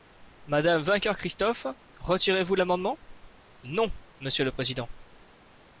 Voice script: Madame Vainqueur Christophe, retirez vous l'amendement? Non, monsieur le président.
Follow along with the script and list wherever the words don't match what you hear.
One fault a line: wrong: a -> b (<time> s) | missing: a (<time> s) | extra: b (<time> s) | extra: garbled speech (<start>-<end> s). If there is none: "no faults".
no faults